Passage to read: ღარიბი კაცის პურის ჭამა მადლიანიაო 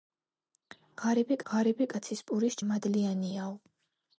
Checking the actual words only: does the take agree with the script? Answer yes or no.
no